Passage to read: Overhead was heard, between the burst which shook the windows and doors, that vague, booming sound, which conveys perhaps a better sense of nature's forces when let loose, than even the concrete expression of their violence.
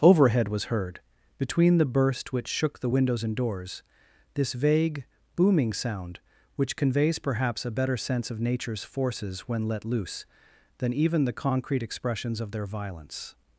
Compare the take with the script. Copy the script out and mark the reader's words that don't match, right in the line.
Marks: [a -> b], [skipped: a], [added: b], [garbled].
Overhead was heard, between the burst which shook the windows and doors, [that -> this] vague, booming sound, which conveys perhaps a better sense of nature's forces when let loose, than even the concrete [expression -> expressions] of their violence.